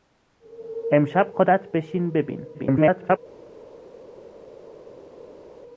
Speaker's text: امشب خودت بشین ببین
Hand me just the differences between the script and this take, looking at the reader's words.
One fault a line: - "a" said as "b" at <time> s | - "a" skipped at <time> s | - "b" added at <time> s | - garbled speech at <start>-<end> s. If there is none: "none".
- garbled speech at 2.5-3.2 s